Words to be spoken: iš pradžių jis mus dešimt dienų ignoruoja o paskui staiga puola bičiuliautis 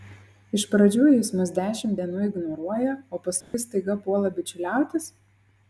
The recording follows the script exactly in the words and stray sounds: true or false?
false